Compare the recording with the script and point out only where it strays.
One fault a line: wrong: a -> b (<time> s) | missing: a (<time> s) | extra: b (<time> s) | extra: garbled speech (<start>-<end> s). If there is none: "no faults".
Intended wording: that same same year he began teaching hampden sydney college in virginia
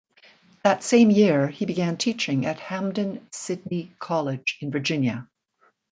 missing: same (1.1 s)
extra: at (2.5 s)